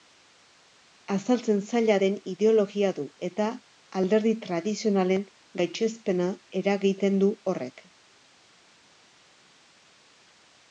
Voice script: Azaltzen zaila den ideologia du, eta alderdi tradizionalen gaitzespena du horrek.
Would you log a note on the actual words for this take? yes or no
yes